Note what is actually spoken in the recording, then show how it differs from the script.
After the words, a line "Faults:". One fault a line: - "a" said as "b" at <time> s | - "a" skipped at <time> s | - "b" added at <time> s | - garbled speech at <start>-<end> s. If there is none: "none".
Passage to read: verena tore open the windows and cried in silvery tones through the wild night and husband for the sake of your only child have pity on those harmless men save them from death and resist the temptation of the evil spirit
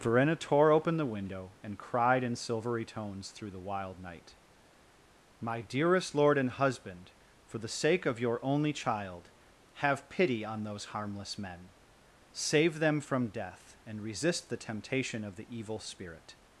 verena tore open the window and cried in silvery tones through the wild night my dearest lord and husband for the sake of your only child have pity on those harmless men save them from death and resist the temptation of the evil spirit
Faults:
- "windows" said as "window" at 1.1 s
- "my dearest lord" added at 5.4 s